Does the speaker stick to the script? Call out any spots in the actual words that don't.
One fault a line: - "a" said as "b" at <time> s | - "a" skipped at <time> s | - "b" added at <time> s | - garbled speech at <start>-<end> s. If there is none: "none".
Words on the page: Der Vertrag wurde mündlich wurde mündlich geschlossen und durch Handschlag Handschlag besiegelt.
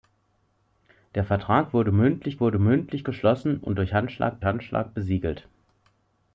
none